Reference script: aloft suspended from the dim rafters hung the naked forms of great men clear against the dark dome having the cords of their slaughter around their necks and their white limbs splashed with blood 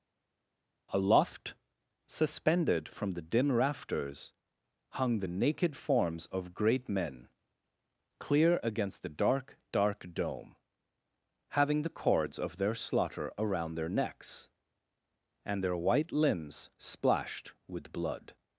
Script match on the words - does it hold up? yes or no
no